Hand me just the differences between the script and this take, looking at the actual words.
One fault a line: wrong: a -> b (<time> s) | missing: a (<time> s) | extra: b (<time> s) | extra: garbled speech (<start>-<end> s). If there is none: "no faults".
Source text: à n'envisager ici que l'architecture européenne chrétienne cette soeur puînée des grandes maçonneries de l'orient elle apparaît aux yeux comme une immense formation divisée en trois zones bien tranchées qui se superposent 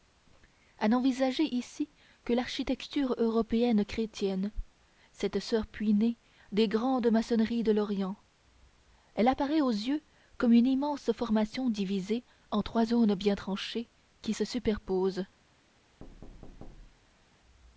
no faults